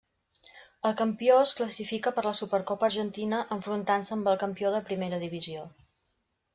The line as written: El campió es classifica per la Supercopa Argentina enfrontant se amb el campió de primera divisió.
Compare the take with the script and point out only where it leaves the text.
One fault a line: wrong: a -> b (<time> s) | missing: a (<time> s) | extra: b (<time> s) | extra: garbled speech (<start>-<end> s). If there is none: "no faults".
no faults